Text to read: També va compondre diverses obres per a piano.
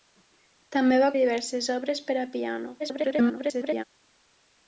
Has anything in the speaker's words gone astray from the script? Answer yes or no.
yes